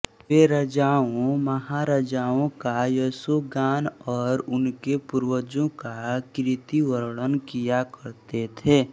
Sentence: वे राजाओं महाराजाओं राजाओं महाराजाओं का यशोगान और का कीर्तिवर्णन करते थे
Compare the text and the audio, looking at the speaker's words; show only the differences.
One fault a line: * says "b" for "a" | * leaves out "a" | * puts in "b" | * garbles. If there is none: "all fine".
* leaves out "राजाओं महाराजाओं"
* puts in "उनके पूर्वजों"
* puts in "किया"